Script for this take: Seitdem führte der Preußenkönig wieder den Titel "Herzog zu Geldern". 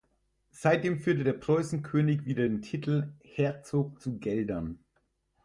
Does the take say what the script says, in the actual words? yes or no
yes